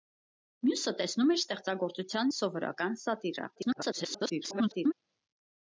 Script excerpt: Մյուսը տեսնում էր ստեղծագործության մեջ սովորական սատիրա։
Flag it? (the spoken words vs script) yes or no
yes